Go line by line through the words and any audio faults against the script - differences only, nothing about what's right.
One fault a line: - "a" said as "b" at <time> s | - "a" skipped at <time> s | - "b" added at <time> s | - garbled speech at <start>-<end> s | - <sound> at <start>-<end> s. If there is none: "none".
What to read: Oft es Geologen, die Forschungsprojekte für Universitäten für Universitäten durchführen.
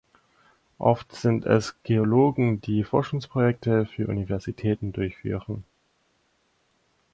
- "sind" added at 1.1 s
- "für Universitäten" skipped at 4.9 s